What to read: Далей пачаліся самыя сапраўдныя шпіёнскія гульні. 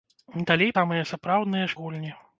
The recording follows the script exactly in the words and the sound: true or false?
false